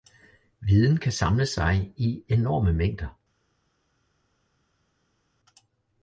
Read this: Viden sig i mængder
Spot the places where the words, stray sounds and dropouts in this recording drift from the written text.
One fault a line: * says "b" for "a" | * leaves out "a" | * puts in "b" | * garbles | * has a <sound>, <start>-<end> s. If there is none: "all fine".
* puts in "kan samle"
* puts in "enorme"